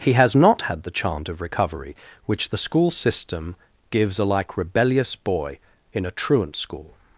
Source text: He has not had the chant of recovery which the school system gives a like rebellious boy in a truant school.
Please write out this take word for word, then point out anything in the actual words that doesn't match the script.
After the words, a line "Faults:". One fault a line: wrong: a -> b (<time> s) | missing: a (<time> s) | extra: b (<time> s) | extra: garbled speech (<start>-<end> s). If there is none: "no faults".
He has not had the chant of recovery which the school system gives a like rebellious boy in a truant school.
Faults:
no faults